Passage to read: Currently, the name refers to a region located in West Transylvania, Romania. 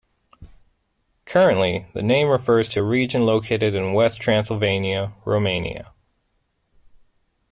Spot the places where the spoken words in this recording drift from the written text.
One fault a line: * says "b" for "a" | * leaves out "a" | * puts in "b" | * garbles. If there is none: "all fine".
all fine